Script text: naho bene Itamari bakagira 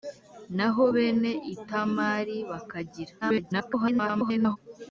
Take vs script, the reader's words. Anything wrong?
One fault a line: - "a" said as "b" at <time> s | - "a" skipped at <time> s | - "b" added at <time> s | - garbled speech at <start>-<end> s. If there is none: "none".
- garbled speech at 3.2-4.6 s